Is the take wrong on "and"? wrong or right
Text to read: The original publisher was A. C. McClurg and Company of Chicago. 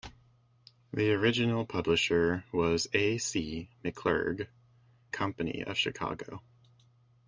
wrong